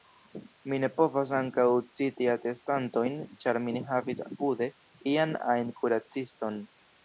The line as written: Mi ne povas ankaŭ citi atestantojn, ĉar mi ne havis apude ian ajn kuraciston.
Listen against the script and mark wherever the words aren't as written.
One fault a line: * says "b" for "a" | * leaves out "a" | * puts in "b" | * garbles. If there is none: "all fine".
all fine